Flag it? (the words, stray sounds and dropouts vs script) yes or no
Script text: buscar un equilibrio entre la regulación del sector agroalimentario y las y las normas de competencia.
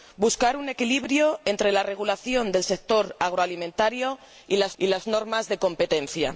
no